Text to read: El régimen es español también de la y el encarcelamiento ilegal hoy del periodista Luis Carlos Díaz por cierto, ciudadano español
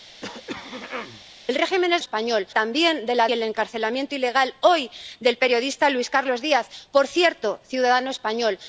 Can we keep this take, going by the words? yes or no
yes